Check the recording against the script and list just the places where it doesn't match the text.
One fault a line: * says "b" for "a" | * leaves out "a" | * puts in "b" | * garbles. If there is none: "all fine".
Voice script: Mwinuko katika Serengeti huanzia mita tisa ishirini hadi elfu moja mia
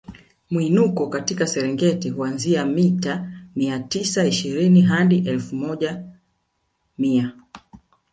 * puts in "mia"